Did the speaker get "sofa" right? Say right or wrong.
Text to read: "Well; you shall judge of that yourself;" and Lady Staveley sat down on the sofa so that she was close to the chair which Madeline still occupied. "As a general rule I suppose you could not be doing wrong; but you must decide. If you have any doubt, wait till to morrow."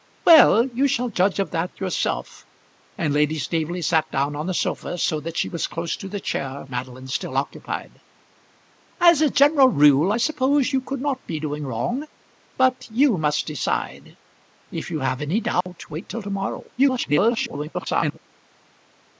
right